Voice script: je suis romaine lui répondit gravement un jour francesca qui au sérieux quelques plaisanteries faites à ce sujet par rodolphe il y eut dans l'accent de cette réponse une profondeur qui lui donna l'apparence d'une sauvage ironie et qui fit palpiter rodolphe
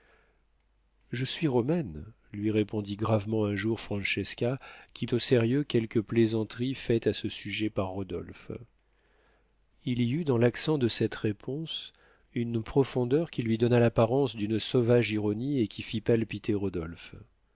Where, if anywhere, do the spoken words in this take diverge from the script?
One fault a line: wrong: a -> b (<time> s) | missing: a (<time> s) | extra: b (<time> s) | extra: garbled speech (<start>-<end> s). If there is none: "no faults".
no faults